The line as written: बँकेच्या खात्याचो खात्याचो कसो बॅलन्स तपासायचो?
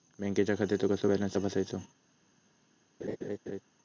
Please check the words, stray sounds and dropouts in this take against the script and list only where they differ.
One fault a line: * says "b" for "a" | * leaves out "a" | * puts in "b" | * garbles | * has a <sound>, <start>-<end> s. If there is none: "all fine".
* leaves out "खात्याचो"
* has a laugh, 3.0-3.6 s